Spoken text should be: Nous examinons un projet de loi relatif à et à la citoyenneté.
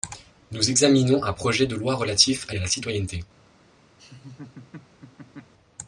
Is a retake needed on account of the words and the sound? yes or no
yes